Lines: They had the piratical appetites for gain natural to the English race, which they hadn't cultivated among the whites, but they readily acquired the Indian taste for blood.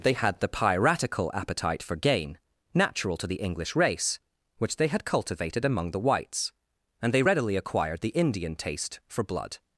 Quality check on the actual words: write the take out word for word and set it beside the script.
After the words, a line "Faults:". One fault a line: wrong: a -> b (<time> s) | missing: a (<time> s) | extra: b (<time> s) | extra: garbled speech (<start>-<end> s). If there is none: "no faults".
They had the piratical appetite for gain natural to the English race, which they had cultivated among the whites, and they readily acquired the Indian taste for blood.
Faults:
wrong: appetites -> appetite (1.3 s)
wrong: hadn't -> had (4.9 s)
wrong: but -> and (7.0 s)